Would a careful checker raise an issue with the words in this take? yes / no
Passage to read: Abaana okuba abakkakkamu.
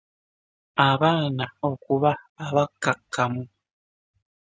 no